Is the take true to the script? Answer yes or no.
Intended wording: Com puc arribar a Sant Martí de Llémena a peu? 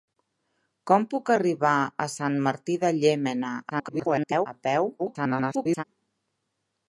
no